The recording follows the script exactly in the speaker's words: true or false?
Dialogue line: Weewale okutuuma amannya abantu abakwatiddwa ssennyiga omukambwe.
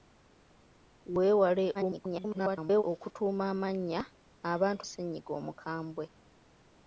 false